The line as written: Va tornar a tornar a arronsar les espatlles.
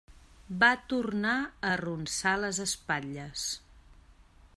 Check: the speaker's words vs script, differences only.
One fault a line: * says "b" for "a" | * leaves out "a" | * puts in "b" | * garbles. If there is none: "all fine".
* leaves out "tornar a"